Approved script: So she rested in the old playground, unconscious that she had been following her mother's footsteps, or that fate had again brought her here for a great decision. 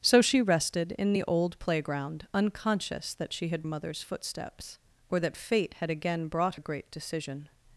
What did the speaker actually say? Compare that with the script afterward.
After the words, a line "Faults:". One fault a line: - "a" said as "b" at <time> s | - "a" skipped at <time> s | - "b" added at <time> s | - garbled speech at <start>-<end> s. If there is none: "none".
So she rested in the old playground, unconscious that she had mother's footsteps, or that fate had again brought a great decision.
Faults:
- "been following her" skipped at 3.6 s
- "her here for" skipped at 6.6 s